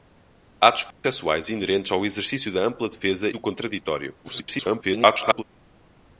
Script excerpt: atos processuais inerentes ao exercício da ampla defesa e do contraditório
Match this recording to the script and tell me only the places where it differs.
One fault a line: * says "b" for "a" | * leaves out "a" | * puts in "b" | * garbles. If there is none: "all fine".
* leaves out "e"
* garbles